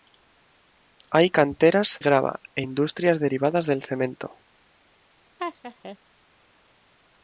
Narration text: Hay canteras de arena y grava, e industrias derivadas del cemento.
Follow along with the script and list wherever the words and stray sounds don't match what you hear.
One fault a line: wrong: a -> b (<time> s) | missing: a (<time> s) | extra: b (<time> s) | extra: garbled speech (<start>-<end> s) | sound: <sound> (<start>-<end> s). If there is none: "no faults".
missing: de arena (2.0 s)
sound: laugh (5.4-6.0 s)